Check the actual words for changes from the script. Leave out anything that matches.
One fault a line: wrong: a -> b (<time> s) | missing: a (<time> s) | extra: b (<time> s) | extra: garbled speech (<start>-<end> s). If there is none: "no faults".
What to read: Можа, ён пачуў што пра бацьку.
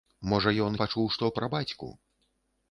no faults